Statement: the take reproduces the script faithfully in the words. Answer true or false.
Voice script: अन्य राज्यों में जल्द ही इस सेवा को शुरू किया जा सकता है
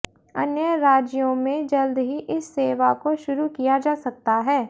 true